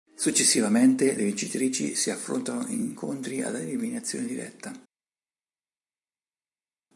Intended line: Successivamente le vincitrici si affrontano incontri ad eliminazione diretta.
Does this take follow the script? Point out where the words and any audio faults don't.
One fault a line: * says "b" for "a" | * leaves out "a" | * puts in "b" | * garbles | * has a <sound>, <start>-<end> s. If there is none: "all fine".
* puts in "in"